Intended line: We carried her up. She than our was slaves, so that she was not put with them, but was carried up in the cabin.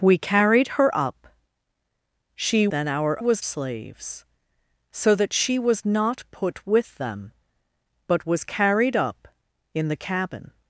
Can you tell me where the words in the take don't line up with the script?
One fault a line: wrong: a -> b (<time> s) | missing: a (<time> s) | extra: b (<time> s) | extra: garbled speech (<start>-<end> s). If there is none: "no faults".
no faults